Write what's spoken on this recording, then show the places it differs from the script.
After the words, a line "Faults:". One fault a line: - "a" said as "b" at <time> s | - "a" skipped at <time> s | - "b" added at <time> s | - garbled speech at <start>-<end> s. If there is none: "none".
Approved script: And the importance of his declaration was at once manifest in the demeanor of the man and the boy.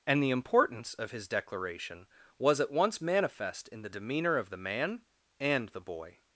And the importance of his declaration was at once manifest in the demeanor of the man and the boy.
Faults:
none